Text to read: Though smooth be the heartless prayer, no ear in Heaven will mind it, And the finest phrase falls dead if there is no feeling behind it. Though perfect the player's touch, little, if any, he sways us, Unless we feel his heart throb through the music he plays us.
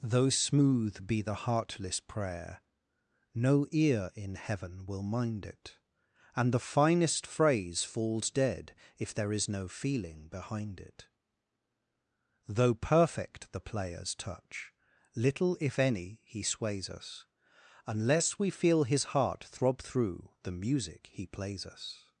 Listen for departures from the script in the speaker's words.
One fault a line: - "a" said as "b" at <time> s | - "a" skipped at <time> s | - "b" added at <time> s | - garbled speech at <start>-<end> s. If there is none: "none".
none